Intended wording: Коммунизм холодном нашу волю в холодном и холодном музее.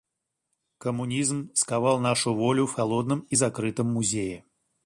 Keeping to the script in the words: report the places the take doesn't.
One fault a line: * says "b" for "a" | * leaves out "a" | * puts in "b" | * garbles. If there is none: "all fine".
* says "сковал" for "холодном"
* says "закрытом" for "холодном"